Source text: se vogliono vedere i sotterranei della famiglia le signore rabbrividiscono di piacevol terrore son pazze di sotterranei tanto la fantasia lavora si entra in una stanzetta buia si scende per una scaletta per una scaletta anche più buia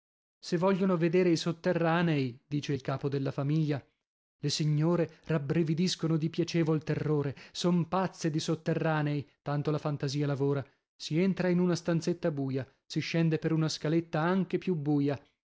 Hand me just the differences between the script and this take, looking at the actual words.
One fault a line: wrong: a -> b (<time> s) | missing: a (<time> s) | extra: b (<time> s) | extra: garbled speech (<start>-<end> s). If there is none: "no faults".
extra: dice il capo (2.5 s)
missing: per una scaletta (14.2 s)